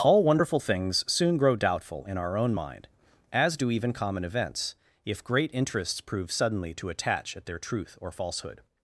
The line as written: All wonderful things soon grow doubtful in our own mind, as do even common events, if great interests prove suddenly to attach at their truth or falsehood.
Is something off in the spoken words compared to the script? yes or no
no